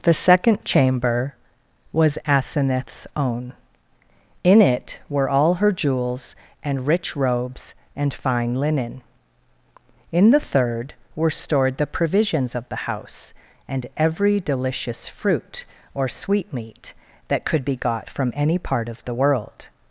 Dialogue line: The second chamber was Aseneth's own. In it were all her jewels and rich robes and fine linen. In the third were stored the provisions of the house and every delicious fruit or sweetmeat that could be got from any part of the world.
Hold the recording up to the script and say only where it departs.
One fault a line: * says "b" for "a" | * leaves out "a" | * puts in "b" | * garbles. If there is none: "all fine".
all fine